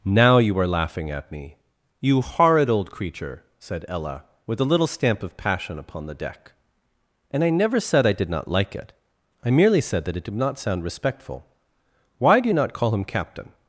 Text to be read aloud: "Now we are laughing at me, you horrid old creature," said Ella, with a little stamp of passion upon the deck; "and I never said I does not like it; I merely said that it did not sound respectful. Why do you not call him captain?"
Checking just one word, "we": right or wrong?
wrong